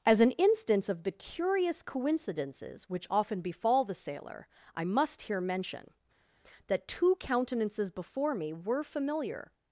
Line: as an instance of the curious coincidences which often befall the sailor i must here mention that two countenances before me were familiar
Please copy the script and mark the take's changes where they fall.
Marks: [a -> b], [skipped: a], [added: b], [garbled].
as an instance of the curious coincidences which often befall the sailor i must here mention that two countenances before me were familiar